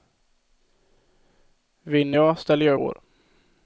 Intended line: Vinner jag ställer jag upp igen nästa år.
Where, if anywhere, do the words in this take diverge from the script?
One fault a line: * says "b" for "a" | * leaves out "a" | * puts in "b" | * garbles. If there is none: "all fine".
* leaves out "upp igen nästa"